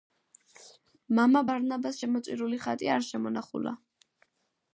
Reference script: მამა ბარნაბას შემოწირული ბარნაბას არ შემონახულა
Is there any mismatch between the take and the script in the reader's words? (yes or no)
yes